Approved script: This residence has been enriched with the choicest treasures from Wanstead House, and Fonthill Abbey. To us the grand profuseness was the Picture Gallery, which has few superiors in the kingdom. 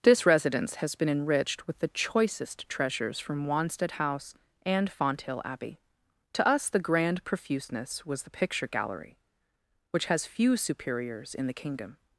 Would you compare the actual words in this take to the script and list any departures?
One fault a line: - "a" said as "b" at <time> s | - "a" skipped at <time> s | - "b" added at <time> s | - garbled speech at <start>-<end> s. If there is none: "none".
none